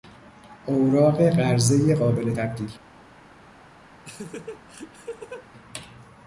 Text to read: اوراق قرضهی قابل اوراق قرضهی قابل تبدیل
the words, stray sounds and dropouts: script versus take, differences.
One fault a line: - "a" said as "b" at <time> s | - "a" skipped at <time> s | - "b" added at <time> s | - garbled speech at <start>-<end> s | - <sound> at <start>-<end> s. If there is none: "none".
- "اوراق قرضهی قابل" skipped at 2.4 s
- laugh at 4.0-5.5 s